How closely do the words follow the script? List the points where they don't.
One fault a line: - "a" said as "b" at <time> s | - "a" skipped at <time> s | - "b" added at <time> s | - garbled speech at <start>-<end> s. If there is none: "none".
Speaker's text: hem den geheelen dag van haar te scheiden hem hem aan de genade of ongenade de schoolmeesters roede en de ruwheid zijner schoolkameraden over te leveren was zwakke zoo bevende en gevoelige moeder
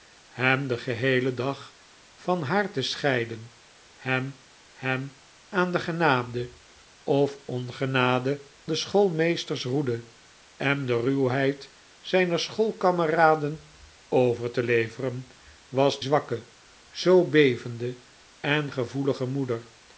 none